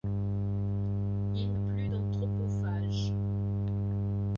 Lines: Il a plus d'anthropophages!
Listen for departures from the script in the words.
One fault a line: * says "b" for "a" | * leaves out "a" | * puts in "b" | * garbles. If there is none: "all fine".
all fine